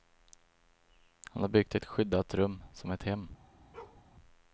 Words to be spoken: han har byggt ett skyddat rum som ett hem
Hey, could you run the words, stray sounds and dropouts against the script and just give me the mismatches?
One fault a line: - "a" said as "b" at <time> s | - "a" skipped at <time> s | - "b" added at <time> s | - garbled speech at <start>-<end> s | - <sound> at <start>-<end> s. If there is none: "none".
- bark at 3.7-4.0 s